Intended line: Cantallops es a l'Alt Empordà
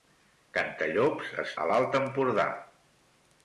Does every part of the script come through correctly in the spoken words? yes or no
yes